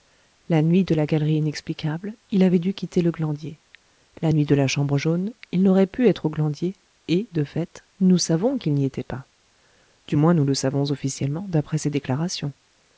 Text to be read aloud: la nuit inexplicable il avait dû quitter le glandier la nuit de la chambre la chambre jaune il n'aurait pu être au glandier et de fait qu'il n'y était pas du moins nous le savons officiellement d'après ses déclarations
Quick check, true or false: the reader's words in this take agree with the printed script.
false